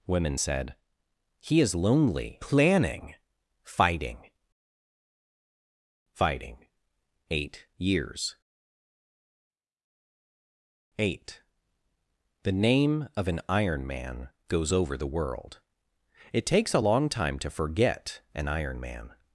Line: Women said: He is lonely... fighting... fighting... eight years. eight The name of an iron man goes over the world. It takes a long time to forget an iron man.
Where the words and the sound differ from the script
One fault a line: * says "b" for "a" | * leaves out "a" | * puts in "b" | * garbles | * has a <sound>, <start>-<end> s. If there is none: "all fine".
* puts in "planning"